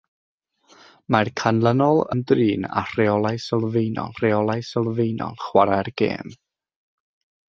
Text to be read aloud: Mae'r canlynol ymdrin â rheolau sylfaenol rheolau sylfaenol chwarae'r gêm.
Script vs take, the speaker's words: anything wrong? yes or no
no